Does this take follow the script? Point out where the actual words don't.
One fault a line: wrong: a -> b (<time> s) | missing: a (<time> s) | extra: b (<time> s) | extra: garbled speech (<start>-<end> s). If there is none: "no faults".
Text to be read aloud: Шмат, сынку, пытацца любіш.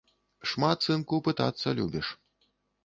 no faults